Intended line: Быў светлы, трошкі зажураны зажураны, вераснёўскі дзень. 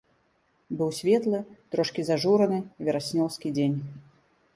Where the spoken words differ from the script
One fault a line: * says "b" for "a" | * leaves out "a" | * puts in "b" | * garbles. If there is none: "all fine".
* leaves out "зажураны"